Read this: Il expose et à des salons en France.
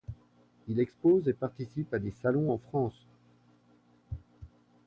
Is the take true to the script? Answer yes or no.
no